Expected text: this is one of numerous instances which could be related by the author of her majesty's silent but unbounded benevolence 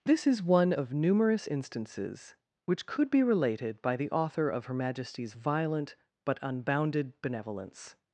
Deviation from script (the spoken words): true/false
true